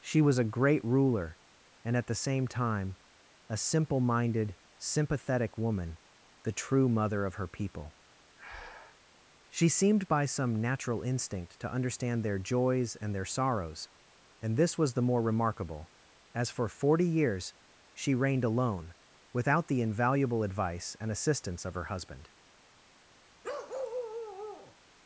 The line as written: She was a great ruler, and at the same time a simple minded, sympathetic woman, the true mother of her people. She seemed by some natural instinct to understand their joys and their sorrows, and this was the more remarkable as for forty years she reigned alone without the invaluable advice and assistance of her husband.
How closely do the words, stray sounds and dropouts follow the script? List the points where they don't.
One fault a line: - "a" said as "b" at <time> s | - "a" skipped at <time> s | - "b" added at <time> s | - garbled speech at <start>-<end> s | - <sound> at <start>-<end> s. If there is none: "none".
- breath at 8.4-9.0 s
- bark at 23.4-24.8 s